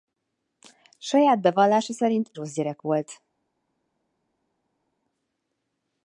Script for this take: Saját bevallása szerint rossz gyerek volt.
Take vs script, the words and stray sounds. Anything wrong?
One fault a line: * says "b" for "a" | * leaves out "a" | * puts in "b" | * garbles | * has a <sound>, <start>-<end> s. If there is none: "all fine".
all fine